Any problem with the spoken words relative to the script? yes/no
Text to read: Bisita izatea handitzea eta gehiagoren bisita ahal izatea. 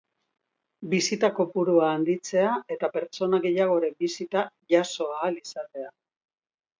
yes